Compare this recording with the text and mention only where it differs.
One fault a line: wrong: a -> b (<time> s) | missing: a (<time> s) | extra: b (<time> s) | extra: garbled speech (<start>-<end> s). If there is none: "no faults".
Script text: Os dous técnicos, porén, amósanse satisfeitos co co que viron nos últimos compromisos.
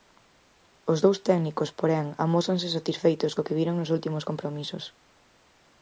missing: co (3.4 s)